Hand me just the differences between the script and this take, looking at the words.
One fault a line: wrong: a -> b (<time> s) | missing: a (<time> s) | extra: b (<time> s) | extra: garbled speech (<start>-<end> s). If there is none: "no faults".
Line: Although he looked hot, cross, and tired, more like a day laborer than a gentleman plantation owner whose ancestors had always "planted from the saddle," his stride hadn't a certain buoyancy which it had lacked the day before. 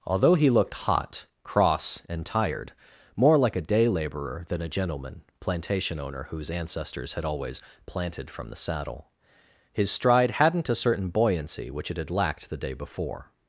no faults